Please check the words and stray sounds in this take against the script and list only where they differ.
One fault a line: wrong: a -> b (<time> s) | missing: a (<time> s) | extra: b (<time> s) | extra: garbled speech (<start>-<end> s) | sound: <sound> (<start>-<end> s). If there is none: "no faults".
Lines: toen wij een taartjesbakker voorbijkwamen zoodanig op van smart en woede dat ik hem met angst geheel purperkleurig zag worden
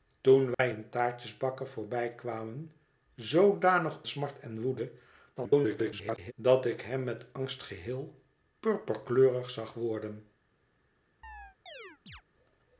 sound: dropout (0.5-0.6 s)
missing: op van (4.0 s)
extra: garbled speech (5.4-6.3 s)
sound: chirp (11.2-12.2 s)